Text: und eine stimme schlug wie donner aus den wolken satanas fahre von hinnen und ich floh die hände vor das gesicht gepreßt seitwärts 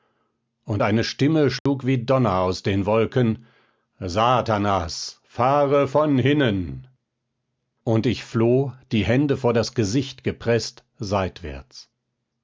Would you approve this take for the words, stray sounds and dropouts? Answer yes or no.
no